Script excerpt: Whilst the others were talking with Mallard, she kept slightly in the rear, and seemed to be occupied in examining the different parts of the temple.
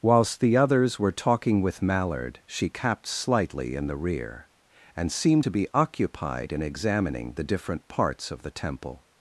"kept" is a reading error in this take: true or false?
true